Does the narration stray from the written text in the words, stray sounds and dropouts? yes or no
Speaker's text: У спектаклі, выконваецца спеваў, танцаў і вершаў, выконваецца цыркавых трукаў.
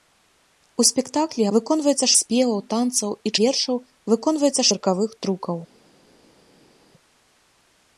no